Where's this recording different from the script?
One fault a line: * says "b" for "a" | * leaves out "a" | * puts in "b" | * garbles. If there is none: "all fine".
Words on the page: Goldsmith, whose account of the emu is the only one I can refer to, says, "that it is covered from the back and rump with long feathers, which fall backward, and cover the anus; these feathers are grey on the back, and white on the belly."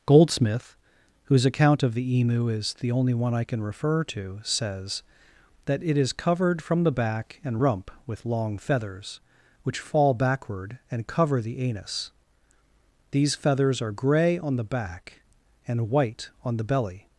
all fine